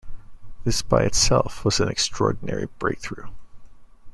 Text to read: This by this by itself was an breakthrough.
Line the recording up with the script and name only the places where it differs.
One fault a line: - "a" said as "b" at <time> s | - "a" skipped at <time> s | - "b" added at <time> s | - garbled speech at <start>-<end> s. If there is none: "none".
- "this by" skipped at 1.0 s
- "extraordinary" added at 1.9 s